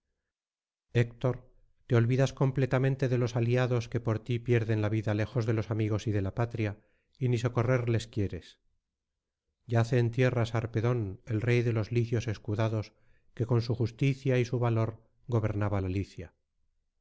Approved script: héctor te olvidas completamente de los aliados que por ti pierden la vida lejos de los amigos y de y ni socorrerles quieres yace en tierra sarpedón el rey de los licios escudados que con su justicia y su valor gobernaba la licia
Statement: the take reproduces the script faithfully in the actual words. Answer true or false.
false